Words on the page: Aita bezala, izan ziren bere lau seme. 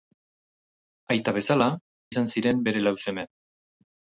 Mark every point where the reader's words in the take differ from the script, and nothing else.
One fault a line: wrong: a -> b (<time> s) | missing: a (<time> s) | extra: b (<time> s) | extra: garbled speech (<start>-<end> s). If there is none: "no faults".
no faults